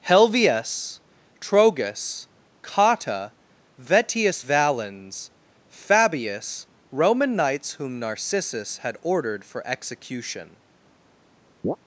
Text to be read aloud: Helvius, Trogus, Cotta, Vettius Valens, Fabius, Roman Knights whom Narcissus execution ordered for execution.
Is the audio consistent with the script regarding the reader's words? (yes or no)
no